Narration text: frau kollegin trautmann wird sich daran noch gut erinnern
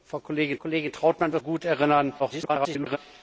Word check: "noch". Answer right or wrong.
wrong